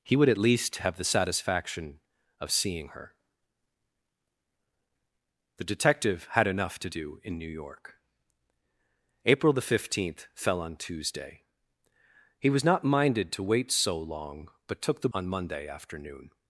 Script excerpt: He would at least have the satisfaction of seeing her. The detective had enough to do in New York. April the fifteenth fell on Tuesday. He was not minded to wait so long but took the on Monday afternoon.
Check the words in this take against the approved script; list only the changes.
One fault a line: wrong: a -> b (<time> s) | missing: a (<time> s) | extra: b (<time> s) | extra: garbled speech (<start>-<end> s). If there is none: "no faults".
no faults